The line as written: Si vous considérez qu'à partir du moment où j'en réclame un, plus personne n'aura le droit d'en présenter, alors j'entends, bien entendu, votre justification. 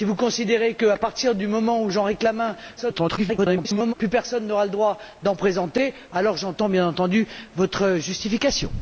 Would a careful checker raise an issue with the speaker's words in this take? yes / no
yes